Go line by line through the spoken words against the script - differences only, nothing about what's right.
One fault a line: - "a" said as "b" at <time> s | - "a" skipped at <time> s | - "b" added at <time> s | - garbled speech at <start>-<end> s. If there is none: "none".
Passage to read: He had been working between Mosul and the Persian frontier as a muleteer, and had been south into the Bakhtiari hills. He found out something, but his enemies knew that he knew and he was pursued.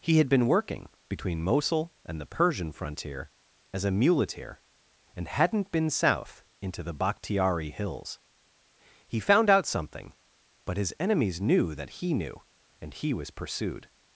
- "had" said as "hadn't" at 5.3 s